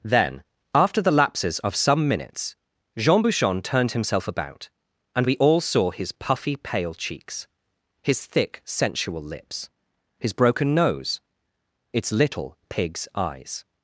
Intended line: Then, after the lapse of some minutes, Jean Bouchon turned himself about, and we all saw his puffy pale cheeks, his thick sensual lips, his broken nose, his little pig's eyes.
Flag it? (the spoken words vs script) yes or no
yes